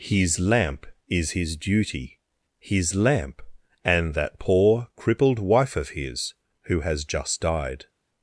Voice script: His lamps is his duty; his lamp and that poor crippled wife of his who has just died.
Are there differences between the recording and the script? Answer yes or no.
yes